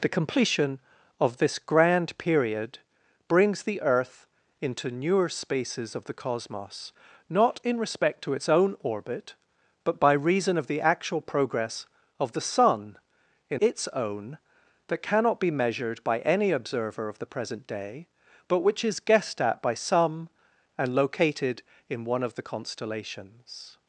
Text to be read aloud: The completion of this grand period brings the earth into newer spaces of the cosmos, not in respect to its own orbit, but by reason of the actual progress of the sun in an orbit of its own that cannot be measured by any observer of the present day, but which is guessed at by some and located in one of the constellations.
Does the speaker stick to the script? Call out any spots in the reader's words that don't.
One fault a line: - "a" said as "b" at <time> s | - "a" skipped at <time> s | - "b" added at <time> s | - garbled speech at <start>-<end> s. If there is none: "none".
- "an orbit of" skipped at 13.6 s